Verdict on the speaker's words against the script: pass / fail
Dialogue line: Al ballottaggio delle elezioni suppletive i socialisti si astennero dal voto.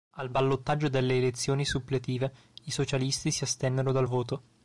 pass